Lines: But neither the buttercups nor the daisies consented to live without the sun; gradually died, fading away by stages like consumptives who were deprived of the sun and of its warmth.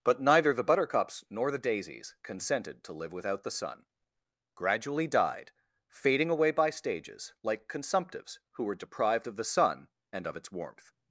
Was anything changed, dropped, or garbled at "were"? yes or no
no